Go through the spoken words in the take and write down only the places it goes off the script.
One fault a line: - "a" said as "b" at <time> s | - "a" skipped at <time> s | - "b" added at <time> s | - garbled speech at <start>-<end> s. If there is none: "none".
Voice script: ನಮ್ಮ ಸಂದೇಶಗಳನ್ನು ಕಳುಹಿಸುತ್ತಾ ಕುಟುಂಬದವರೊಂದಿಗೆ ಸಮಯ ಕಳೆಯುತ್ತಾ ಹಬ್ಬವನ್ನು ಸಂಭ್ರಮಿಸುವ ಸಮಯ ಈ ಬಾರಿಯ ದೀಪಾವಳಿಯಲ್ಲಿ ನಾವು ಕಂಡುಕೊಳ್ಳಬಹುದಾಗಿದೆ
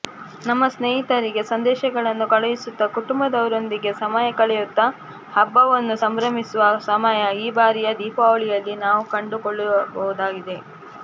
- "ಸ್ನೇಹಿತರಿಗೆ" added at 0.7 s